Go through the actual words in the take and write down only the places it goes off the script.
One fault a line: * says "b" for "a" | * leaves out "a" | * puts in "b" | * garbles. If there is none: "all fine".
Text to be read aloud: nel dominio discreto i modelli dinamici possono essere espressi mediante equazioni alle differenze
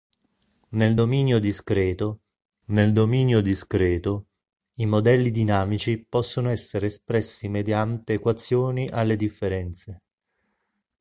* puts in "nel dominio discreto"